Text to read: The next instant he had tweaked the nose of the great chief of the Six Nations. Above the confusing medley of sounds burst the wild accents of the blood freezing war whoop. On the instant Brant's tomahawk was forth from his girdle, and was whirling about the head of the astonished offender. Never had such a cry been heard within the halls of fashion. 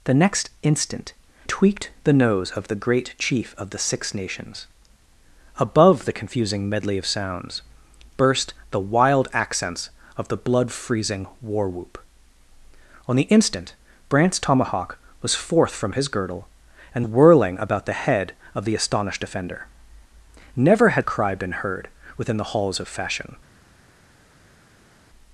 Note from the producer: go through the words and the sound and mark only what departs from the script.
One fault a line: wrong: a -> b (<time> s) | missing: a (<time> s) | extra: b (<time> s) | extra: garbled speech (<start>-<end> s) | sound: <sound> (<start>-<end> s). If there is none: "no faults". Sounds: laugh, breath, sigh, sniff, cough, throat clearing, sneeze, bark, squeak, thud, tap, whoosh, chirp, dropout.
missing: he had (1.1 s)
missing: was (17.1 s)
missing: such (21.0 s)